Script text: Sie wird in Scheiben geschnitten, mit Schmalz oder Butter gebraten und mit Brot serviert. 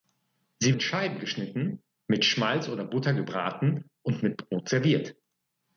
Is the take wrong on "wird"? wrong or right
wrong